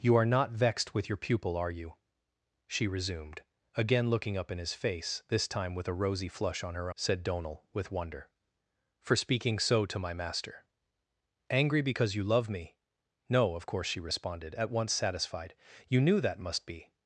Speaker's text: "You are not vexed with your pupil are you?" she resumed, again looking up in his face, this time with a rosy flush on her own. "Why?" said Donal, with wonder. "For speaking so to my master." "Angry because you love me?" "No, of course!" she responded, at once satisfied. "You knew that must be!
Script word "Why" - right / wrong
wrong